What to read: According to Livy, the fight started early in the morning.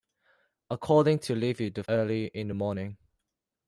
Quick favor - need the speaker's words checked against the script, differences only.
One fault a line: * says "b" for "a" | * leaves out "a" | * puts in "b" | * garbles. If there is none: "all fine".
* leaves out "fight started"